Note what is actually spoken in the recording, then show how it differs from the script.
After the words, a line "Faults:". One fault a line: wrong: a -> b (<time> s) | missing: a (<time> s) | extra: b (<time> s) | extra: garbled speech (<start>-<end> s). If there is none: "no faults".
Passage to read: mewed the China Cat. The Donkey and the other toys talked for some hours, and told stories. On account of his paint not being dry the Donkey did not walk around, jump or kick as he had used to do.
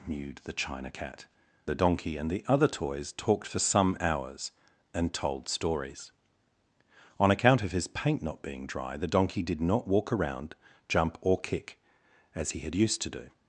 mewed the China Cat. The Donkey and the other toys talked for some hours, and told stories. On account of his paint not being dry the Donkey did not walk around, jump or kick as he had used to do.
Faults:
no faults